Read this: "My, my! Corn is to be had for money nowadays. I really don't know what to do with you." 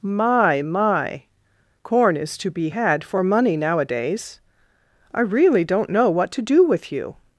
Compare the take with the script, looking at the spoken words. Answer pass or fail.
pass